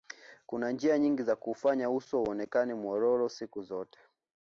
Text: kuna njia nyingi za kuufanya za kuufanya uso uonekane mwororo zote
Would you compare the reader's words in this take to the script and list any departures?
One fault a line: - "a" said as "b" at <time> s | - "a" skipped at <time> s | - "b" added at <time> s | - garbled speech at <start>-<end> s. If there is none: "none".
- "za kuufanya" skipped at 1.9 s
- "siku" added at 3.3 s